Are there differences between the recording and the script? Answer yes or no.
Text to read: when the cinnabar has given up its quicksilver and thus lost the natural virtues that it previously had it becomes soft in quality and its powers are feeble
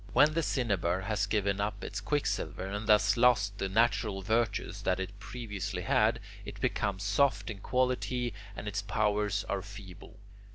no